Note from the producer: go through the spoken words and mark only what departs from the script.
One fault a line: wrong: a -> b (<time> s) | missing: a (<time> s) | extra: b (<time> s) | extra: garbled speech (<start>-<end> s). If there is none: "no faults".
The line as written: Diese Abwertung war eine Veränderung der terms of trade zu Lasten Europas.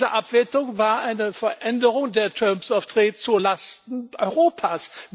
no faults